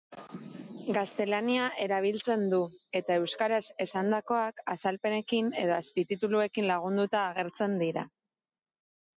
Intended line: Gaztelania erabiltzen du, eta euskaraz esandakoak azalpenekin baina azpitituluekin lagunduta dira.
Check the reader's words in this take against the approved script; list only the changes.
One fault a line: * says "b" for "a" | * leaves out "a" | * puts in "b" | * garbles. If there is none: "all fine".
* says "edo" for "baina"
* puts in "agertzen"